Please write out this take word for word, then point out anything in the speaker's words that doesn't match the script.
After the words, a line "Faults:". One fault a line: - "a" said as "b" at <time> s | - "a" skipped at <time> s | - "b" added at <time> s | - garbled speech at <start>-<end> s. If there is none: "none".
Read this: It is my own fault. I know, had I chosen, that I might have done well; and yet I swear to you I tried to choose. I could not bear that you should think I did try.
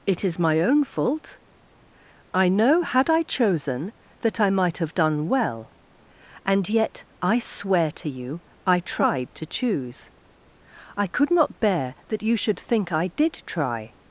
It is my own fault. I know, had I chosen, that I might have done well; and yet I swear to you I tried to choose. I could not bear that you should think I did try.
Faults:
none